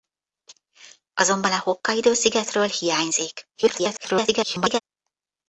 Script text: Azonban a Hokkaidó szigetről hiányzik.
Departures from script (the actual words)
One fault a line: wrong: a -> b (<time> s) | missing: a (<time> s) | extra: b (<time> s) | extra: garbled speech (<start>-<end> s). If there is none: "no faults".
extra: garbled speech (3.5-4.8 s)